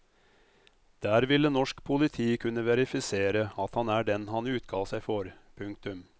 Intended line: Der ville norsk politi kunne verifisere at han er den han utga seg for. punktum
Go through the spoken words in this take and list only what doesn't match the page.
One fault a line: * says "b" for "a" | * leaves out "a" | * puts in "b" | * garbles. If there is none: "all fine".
all fine